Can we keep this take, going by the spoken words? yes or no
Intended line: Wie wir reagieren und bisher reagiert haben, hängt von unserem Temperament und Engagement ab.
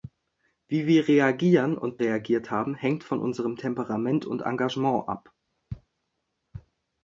no